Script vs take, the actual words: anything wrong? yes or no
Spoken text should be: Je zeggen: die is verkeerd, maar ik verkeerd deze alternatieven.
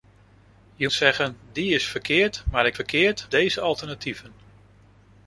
no